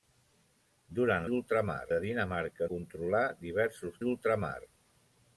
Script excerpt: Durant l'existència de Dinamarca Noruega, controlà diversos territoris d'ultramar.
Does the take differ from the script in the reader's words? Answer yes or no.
yes